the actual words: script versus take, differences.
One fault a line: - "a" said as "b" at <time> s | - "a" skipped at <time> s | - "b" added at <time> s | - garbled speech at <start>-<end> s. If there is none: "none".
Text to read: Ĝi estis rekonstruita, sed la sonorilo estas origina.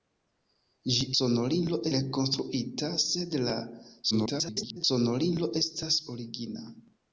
- "estis" said as "sonorilo" at 1.2 s
- garbled speech at 4.1-4.8 s